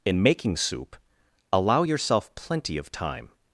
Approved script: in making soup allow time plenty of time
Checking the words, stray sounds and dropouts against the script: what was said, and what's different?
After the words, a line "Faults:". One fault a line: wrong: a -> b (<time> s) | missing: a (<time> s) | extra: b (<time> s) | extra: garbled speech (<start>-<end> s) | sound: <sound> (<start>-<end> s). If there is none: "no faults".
in making soup allow yourself plenty of time
Faults:
wrong: time -> yourself (1.8 s)